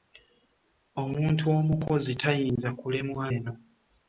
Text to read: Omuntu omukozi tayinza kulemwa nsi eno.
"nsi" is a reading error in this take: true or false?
true